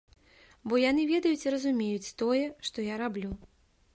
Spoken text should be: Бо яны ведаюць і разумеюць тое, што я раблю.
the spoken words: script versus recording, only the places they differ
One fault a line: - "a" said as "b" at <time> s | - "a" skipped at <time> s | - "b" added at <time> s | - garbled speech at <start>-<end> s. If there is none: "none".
none